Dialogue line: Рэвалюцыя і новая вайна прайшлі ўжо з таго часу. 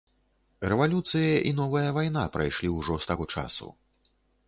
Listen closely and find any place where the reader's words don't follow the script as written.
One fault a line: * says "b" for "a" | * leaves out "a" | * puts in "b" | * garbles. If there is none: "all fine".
all fine